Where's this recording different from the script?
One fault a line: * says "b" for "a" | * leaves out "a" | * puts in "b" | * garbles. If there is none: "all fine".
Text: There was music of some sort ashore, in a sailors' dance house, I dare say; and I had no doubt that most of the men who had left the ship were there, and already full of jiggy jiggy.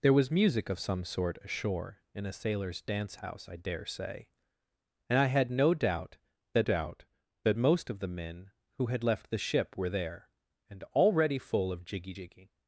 * puts in "doubt that"